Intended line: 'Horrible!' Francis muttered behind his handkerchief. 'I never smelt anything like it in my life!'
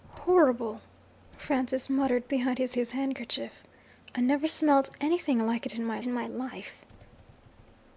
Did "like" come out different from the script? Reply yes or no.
no